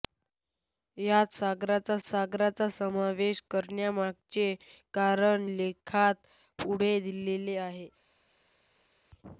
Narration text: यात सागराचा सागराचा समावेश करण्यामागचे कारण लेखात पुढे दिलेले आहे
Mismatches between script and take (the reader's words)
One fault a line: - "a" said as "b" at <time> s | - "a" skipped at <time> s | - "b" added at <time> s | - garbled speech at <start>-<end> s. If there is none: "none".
none